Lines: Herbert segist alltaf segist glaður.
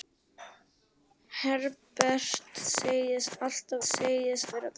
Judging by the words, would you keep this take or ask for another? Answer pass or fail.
pass